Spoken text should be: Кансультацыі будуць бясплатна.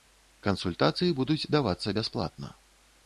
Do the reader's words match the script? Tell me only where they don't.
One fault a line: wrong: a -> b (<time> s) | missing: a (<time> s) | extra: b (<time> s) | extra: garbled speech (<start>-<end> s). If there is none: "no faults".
extra: давацца (1.6 s)